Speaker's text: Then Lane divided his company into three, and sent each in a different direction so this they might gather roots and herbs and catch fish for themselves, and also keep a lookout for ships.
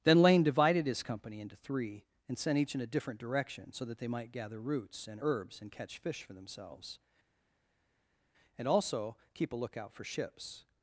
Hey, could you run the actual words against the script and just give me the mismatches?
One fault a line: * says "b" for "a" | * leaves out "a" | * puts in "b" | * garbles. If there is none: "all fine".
* says "that" for "this"